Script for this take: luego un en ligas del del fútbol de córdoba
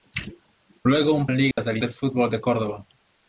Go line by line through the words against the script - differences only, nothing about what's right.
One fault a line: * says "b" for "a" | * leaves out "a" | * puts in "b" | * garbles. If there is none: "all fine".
all fine